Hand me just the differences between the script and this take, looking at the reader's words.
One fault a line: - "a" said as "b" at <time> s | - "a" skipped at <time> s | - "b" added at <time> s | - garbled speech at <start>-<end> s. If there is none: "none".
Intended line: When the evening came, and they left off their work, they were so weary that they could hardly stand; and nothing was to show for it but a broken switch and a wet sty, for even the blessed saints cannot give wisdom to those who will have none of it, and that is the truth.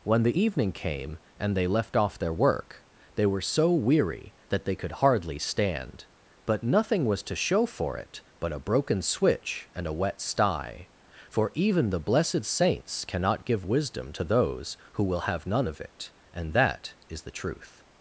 - "and" said as "but" at 6.4 s